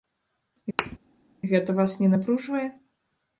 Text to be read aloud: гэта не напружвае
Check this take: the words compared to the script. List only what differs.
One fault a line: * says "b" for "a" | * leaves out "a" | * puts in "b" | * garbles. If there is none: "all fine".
* puts in "вас"